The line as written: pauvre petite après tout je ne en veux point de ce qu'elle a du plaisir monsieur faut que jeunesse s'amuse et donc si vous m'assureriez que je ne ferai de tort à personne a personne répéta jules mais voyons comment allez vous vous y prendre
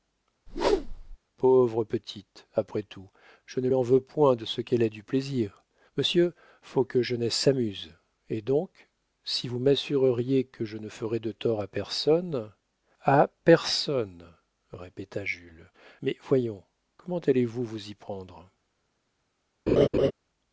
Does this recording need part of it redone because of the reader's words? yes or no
no